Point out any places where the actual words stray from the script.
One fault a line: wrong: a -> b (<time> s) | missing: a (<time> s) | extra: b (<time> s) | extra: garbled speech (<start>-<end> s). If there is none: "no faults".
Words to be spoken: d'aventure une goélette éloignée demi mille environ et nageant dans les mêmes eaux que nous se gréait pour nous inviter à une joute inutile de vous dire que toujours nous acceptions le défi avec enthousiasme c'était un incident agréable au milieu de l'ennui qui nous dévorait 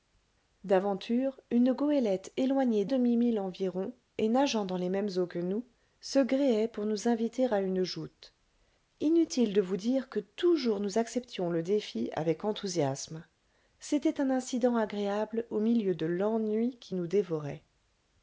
no faults